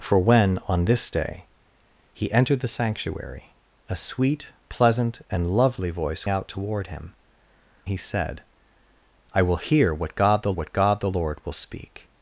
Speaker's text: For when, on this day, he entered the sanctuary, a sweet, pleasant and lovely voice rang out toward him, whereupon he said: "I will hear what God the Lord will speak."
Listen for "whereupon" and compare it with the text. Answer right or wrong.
wrong